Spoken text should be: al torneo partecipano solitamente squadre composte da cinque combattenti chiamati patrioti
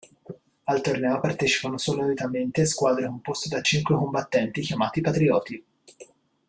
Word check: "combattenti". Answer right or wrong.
right